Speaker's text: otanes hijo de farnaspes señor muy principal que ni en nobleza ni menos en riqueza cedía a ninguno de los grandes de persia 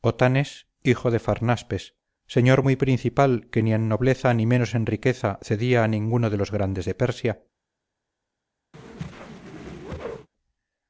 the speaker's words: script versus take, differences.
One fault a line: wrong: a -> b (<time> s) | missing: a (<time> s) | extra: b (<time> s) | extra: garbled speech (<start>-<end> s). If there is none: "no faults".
no faults